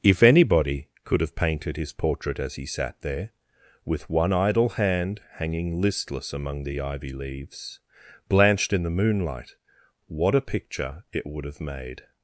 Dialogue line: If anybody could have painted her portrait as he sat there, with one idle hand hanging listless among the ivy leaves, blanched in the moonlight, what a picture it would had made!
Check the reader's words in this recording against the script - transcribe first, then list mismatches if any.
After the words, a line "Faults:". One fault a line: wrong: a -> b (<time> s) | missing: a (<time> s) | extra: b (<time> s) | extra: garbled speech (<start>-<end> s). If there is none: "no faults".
If anybody could have painted his portrait as he sat there, with one idle hand hanging listless among the ivy leaves, blanched in the moonlight, what a picture it would have made!
Faults:
wrong: her -> his (1.8 s)
wrong: had -> have (11.4 s)